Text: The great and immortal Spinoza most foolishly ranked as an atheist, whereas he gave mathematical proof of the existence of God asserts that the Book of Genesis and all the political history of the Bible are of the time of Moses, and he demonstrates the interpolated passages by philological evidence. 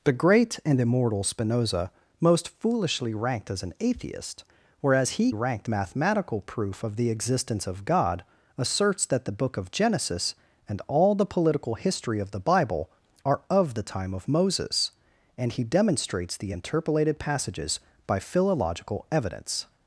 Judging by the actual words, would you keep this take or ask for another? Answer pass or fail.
fail